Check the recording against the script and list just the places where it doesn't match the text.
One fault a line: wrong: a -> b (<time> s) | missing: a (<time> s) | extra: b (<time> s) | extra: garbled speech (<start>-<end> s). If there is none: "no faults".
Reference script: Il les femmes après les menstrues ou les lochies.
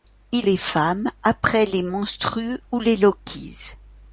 no faults